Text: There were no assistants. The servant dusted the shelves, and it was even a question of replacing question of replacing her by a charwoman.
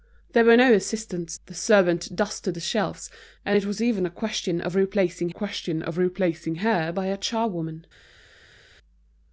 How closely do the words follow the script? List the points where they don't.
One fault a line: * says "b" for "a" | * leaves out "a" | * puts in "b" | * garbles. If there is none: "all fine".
all fine